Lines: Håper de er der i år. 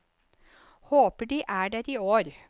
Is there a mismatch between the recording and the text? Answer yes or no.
no